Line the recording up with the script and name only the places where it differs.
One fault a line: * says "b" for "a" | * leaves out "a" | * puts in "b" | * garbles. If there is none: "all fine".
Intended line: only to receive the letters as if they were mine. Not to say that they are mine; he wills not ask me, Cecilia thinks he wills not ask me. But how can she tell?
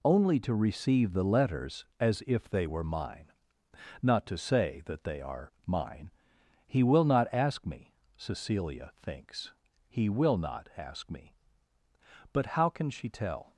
* says "will" for "wills"
* says "will" for "wills"